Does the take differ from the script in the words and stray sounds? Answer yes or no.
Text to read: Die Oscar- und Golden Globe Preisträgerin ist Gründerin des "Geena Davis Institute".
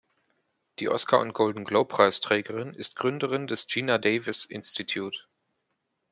no